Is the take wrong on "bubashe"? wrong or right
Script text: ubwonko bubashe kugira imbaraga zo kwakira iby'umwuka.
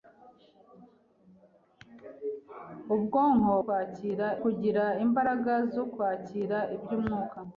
wrong